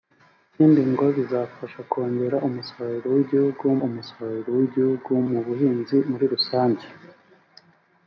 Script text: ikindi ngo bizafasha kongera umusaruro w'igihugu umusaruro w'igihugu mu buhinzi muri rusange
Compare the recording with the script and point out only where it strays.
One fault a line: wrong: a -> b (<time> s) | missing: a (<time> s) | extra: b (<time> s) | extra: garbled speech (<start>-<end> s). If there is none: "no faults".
no faults